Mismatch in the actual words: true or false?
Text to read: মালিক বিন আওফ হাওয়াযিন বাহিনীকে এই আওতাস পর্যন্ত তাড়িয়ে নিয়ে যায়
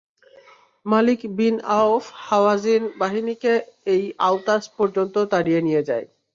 false